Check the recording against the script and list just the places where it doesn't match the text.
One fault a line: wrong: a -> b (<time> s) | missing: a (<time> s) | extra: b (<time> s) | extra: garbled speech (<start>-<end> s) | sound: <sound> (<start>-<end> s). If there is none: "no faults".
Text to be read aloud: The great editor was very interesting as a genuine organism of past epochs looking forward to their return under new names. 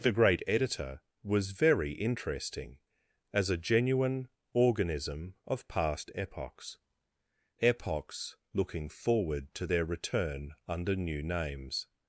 extra: epochs (7.6 s)